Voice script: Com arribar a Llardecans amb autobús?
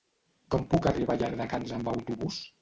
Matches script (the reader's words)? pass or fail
fail